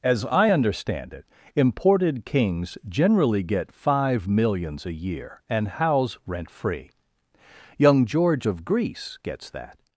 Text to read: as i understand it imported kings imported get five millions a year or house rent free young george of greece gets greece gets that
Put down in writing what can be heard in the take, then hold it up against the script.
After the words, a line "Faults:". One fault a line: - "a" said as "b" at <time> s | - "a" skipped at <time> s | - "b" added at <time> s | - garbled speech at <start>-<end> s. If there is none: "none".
as i understand it imported kings generally get five millions a year and house rent free young george of greece gets that
Faults:
- "imported" said as "generally" at 2.9 s
- "or" said as "and" at 5.5 s
- "greece gets" skipped at 9.5 s